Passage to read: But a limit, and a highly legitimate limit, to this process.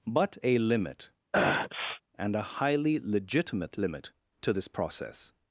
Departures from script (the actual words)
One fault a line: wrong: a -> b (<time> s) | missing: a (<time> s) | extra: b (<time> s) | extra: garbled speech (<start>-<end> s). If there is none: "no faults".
no faults